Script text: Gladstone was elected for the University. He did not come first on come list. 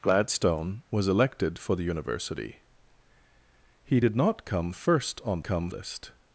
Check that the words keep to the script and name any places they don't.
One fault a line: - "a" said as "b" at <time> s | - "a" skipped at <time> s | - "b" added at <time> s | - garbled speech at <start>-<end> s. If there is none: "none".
none